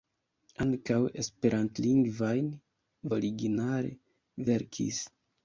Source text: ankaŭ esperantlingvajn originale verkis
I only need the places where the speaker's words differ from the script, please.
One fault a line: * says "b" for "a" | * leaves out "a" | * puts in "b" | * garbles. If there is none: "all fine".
all fine